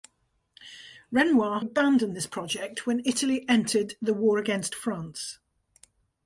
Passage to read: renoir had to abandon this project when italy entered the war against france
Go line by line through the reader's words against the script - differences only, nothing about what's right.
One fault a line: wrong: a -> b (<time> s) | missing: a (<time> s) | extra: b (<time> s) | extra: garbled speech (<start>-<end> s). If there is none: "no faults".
missing: had to (1.6 s)